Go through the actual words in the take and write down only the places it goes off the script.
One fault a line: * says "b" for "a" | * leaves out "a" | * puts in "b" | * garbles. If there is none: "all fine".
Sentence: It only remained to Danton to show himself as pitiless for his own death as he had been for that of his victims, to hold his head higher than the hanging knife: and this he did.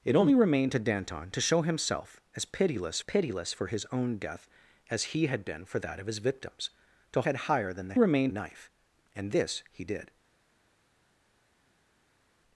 * puts in "pitiless"
* leaves out "hold his"
* says "remained" for "hanging"